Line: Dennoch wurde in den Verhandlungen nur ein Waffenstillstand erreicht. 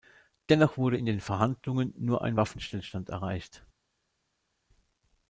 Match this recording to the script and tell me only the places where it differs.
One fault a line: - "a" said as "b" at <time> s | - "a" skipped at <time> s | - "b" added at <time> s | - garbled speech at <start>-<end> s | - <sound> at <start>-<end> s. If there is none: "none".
none